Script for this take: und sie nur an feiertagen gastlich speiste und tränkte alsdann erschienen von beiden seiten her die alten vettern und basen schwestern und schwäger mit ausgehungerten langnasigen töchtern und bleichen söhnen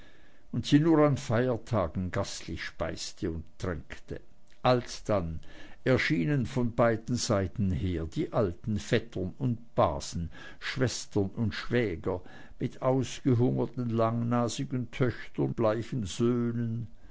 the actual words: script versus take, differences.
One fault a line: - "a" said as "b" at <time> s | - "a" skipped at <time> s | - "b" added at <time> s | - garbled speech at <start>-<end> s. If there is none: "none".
- "und" skipped at 15.5 s